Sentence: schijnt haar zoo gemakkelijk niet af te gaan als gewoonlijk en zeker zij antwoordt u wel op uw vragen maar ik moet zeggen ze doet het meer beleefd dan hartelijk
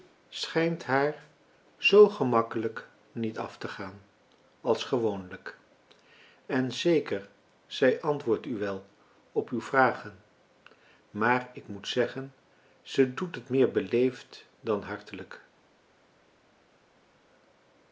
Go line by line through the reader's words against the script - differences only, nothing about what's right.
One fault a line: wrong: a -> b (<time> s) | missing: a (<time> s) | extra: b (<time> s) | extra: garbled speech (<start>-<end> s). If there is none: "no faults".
no faults